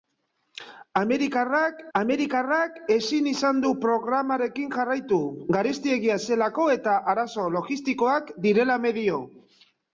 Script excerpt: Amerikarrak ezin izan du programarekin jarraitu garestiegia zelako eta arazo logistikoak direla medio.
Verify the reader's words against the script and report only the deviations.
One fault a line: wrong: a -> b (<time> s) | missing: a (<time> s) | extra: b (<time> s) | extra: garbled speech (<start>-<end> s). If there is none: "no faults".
extra: amerikarrak (2.0 s)